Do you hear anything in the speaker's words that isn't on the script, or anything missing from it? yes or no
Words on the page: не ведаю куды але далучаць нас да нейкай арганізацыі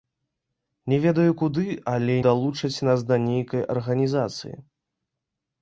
no